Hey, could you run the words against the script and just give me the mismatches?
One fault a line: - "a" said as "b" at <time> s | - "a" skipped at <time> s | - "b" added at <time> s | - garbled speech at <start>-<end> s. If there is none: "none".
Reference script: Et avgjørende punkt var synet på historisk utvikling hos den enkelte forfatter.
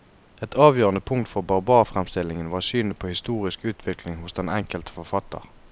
- "for barbarfremstillingen" added at 1.3 s